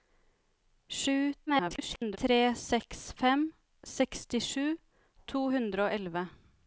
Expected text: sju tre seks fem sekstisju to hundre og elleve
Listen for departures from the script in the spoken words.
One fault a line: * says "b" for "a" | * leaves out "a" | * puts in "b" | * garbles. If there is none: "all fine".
* garbles